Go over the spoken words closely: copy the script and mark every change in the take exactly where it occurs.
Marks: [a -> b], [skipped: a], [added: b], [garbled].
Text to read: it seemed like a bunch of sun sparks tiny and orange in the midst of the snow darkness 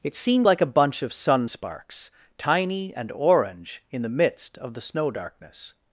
it seemed like a bunch of sun sparks tiny and orange in the midst of the snow darkness